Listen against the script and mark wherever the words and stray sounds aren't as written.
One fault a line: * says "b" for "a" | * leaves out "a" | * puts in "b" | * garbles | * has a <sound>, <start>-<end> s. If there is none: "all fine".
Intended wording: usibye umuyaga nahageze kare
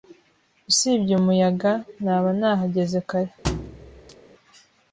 * puts in "naba"
* has a thud, 3.4-4.2 s